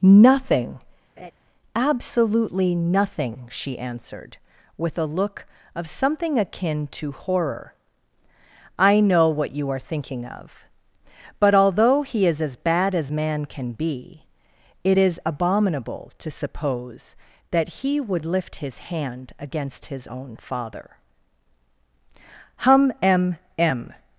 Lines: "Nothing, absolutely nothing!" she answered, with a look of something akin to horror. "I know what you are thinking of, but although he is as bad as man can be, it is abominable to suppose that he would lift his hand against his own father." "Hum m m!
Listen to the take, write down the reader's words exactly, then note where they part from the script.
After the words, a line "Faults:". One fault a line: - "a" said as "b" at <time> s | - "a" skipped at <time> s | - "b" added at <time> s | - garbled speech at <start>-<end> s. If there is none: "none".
"Nothing, absolutely nothing!" she answered, with a look of something akin to horror. "I know what you are thinking of, but although he is as bad as man can be, it is abominable to suppose that he would lift his hand against his own father." "Hum m m!
Faults:
none